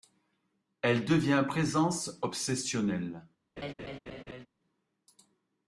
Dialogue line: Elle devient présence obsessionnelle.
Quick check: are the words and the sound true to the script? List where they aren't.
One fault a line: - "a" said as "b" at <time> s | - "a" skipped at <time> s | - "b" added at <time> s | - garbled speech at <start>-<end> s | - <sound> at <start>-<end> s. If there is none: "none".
- laugh at 3.6-4.5 s